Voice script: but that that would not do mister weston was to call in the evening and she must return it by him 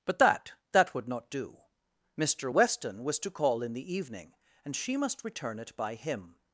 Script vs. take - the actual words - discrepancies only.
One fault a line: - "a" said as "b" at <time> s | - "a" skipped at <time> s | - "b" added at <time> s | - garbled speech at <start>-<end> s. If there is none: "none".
none